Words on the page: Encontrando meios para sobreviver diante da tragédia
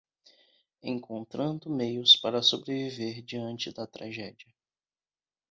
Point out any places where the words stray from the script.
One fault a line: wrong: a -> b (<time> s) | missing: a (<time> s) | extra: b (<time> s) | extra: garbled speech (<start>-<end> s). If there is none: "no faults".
no faults